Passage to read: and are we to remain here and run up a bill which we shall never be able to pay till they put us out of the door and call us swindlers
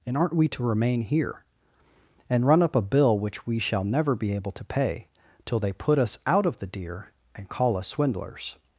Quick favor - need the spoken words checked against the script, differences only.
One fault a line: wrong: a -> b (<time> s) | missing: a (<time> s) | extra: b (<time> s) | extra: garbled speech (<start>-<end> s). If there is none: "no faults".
wrong: are -> aren't (0.2 s)
wrong: door -> deer (6.7 s)